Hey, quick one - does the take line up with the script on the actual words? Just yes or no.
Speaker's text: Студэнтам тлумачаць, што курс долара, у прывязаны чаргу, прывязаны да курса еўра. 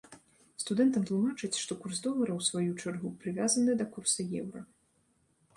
no